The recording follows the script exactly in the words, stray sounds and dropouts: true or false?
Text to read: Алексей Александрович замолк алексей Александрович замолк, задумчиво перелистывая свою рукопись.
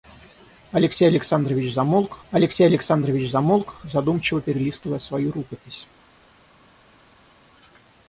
true